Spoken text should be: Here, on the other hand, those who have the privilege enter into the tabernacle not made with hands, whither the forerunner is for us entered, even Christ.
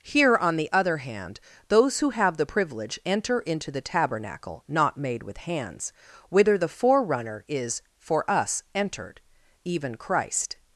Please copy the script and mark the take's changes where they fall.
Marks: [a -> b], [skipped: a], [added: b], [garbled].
Here, on the other hand, those who have the privilege enter into the tabernacle not made with hands, whither the forerunner is for us entered, even Christ.